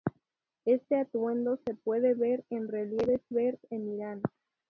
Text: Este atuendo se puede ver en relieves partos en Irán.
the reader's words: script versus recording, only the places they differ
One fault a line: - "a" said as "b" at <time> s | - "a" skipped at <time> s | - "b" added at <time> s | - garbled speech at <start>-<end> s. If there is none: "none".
- "partos" said as "ver" at 3.3 s